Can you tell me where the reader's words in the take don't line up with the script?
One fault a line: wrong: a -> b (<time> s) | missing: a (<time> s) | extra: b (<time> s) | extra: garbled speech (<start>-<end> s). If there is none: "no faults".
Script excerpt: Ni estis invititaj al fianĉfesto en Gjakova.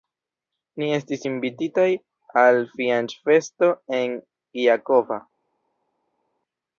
no faults